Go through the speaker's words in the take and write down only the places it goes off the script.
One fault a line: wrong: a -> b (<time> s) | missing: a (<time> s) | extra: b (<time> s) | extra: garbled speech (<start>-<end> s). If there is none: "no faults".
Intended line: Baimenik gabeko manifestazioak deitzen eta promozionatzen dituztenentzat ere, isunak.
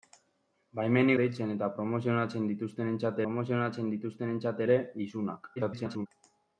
wrong: gabeko manifestazioak deitzen eta -> deitzen eta promozionatzen dituztenentzat (1.2 s)
extra: garbled speech (5.6-6.1 s)